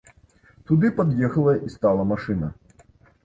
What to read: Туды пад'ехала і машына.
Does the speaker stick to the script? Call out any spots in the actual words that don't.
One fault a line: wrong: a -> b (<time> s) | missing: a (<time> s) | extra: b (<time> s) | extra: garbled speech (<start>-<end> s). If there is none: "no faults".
extra: стала (1.7 s)